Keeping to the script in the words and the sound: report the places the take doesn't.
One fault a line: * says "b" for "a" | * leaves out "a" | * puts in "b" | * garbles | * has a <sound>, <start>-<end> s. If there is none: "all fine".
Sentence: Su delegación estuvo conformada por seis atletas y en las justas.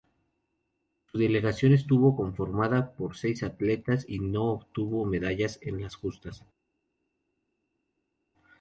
* puts in "no obtuvo medallas"